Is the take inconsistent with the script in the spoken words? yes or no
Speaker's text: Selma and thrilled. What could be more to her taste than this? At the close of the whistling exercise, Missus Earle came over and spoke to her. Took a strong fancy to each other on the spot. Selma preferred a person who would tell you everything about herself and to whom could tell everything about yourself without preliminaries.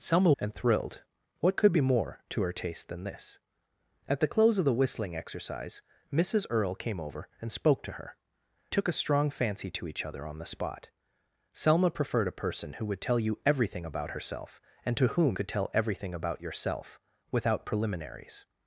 no